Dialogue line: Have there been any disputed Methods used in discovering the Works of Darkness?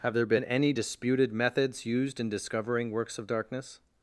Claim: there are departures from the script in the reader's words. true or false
true